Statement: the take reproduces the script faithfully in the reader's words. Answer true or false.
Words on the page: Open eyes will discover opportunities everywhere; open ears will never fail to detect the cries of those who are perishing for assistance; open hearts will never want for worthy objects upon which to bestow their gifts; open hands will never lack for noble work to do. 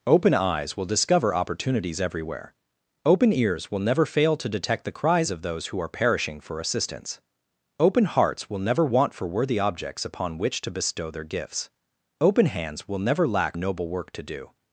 false